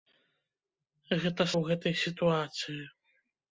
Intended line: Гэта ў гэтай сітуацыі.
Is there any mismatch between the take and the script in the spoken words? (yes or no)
no